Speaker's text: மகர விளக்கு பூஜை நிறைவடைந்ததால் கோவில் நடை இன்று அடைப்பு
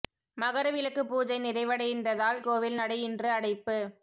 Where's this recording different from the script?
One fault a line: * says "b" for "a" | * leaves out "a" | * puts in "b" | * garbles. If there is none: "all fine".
all fine